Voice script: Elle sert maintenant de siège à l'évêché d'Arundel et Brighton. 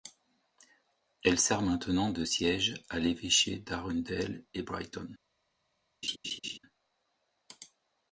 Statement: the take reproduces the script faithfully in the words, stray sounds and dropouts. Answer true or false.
false